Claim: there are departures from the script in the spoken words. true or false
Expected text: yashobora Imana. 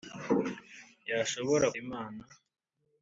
false